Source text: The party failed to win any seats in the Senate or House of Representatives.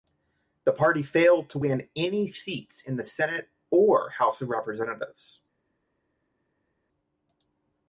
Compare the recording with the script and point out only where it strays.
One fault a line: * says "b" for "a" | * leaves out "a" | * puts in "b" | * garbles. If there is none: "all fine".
all fine